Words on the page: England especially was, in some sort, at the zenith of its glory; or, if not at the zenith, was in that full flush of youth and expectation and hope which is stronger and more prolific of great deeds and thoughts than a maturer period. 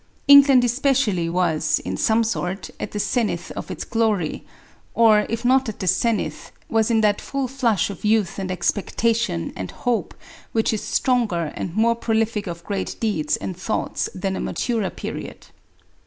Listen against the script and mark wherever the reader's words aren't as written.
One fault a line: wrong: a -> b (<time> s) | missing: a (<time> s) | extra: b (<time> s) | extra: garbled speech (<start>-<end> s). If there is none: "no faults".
no faults